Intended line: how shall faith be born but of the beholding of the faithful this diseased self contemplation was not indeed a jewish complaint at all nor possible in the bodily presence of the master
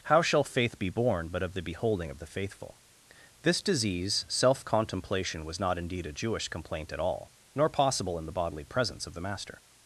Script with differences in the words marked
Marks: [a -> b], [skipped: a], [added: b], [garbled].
how shall faith be born but of the beholding of the faithful this [diseased -> disease] self contemplation was not indeed a jewish complaint at all nor possible in the bodily presence of the master